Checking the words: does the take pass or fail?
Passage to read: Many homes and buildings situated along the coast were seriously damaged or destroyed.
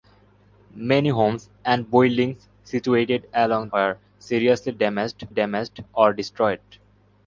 fail